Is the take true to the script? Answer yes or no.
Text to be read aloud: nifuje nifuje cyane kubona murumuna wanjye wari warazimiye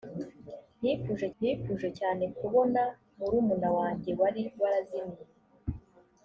yes